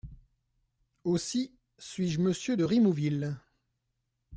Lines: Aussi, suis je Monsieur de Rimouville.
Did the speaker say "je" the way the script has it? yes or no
yes